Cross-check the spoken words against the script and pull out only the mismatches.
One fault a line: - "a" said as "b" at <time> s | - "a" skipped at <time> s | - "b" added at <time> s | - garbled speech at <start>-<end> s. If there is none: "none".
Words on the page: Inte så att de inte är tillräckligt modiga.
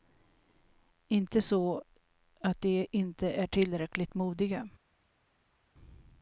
none